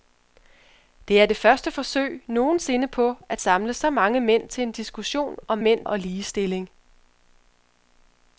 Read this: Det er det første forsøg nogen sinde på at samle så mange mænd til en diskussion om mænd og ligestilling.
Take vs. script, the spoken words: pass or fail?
pass